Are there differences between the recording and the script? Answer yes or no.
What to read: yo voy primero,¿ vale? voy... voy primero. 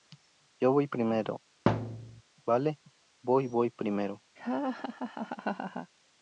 no